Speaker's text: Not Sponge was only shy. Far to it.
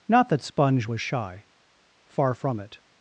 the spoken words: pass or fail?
fail